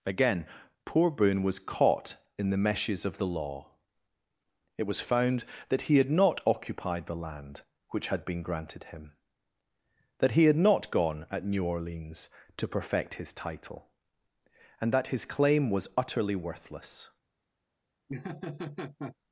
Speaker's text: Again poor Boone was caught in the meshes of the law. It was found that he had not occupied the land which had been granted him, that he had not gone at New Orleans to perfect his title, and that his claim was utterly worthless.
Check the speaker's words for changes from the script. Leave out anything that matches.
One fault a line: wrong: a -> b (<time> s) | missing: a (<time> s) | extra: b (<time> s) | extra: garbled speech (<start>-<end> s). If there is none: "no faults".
no faults